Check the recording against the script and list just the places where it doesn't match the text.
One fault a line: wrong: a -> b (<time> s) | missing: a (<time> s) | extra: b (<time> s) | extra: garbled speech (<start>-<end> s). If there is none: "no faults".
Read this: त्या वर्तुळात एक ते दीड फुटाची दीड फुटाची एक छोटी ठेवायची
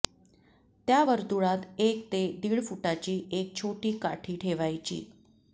missing: दीड फुटाची (3.2 s)
extra: काठी (4.0 s)